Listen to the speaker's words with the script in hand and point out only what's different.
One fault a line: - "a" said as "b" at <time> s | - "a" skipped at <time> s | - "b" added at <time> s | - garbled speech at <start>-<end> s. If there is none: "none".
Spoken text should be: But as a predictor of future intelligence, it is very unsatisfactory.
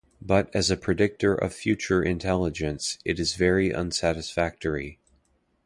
none